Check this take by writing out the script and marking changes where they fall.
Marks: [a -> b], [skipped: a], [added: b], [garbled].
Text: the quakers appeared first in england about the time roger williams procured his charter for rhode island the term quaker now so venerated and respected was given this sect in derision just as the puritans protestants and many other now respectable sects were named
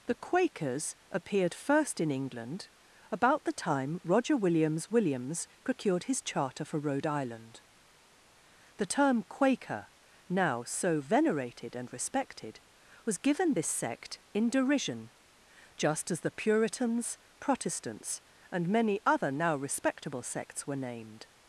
the quakers appeared first in england about the time roger williams [added: williams] procured his charter for rhode island the term quaker now so venerated and respected was given this sect in derision just as the puritans protestants and many other now respectable sects were named